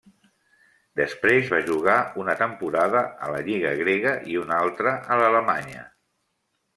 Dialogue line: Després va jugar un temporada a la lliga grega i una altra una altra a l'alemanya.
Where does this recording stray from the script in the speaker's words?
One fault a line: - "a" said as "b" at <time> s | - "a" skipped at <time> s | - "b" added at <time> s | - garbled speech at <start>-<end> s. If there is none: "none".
- "un" said as "una" at 2.2 s
- "una altra" skipped at 5.0 s